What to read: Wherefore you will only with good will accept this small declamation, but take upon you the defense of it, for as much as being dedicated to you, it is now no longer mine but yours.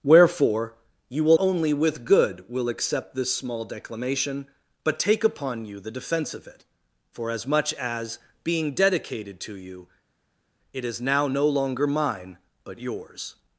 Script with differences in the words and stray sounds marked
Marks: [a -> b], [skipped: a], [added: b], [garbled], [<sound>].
Wherefore you will only with good will accept this small declamation, but take upon you the defense of it, for as much as being dedicated to you, it is now no longer mine but yours.